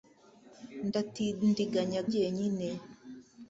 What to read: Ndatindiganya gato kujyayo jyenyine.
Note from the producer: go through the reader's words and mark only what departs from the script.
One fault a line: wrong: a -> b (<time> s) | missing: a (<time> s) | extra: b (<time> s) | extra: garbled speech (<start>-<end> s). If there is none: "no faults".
missing: gato kujyayo (2.0 s)